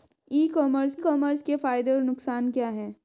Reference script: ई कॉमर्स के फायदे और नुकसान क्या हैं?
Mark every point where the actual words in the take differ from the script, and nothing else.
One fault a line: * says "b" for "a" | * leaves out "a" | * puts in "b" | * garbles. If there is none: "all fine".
* puts in "कॉमर्स"